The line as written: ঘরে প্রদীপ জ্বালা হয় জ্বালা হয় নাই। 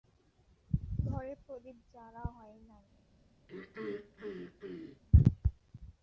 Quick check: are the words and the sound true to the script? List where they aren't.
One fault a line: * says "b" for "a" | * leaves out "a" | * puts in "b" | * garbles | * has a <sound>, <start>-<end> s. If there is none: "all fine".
* leaves out "জ্বালা হয়"
* has a throat clearing, 3.5-5.0 s